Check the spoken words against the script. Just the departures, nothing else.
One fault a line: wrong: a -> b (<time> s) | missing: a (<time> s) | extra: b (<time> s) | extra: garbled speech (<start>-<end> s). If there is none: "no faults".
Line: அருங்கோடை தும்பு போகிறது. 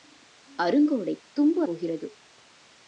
no faults